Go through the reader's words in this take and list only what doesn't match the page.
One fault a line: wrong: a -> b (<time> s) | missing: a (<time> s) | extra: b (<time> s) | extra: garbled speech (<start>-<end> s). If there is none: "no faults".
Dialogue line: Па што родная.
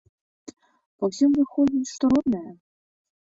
extra: ўсім выходзіць (1.1 s)